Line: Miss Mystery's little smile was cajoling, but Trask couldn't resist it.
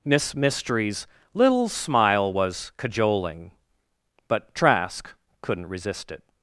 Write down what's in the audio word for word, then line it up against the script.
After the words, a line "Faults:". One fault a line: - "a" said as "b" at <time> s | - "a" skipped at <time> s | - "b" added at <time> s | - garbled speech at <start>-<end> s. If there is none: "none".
Miss Mystery's little smile was cajoling, but Trask couldn't resist it.
Faults:
none